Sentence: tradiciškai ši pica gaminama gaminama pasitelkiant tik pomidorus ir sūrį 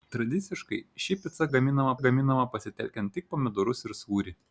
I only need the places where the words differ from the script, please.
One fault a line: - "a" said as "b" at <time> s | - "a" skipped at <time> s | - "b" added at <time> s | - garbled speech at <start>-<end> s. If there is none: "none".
none